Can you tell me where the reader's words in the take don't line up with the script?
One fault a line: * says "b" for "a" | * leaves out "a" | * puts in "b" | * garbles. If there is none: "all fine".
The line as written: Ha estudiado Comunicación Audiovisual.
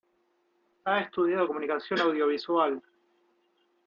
all fine